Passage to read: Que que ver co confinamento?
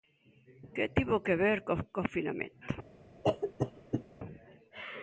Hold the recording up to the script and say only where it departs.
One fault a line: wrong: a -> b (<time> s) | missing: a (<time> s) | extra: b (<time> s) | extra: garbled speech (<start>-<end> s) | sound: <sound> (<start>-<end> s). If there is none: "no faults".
extra: tivo (0.9 s)
sound: cough (3.2-4.0 s)